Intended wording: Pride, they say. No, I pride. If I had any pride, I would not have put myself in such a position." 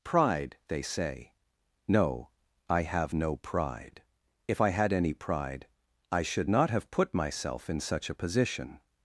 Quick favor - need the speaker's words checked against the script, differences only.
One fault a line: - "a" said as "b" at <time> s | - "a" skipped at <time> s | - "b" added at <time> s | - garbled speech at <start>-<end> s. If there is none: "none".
- "have no" added at 2.8 s
- "would" said as "should" at 6.2 s